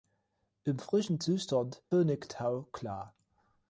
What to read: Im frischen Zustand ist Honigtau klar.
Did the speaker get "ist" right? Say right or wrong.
wrong